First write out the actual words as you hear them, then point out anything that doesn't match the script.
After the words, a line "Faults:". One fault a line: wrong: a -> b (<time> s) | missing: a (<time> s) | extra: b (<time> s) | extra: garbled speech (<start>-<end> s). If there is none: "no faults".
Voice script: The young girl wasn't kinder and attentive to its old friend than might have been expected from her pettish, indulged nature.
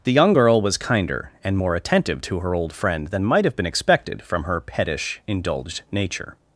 The young girl was kinder and more attentive to her old friend than might have been expected from her pettish, indulged nature.
Faults:
wrong: wasn't -> was (0.6 s)
extra: more (1.5 s)
wrong: its -> her (2.4 s)